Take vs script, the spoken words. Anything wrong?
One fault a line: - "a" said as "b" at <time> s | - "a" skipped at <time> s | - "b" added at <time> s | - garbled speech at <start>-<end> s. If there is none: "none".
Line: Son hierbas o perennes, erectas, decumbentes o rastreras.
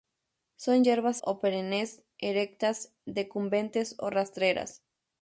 none